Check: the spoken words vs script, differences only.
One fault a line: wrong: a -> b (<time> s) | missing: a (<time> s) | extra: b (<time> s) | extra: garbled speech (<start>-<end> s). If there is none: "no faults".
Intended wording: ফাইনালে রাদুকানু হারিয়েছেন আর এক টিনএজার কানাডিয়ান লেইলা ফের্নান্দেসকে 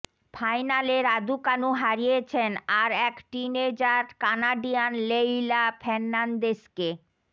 no faults